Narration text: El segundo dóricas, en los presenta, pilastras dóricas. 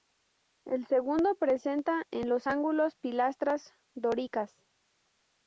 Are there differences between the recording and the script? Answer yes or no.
yes